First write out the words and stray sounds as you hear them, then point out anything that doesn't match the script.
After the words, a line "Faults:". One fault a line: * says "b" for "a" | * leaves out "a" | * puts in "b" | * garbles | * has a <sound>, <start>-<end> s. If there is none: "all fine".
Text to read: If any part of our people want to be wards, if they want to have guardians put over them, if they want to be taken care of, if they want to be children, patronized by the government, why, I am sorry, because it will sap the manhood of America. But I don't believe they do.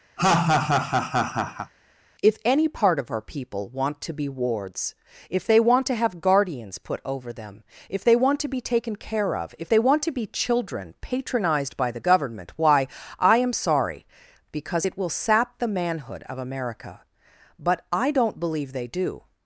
If any part of our people want to be wards, if they want to have guardians put over them, if they want to be taken care of, if they want to be children, patronized by the government, why, I am sorry, because it will sap the manhood of America. But I don't believe they do.
Faults:
* has a laugh, 0.2-1.7 s